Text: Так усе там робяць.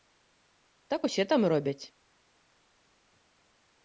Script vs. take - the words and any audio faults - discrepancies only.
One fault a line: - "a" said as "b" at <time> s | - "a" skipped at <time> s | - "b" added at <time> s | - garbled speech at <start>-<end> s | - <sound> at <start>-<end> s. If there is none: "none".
none